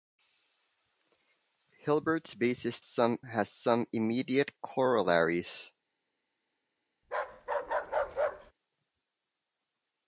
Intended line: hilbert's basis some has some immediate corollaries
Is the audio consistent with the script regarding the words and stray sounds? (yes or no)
no